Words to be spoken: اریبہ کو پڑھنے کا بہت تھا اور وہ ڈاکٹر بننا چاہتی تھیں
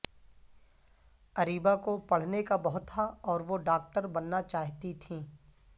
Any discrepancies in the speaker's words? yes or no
no